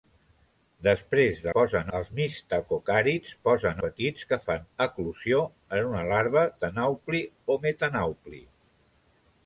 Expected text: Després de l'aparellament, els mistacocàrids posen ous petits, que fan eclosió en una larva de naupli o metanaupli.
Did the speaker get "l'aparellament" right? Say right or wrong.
wrong